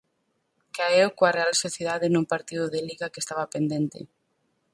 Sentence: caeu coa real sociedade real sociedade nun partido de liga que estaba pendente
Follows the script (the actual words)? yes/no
no